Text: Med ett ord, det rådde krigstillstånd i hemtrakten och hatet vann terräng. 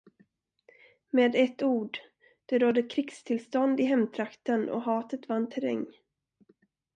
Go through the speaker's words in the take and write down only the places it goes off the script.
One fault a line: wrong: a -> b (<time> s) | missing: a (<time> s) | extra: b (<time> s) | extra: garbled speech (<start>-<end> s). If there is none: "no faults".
no faults